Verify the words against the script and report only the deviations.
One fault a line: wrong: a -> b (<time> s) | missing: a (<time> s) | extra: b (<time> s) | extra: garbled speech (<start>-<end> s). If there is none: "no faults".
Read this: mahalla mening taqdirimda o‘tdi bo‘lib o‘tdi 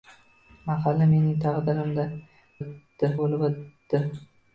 no faults